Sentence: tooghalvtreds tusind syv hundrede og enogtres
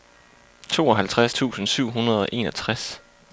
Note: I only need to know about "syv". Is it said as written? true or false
true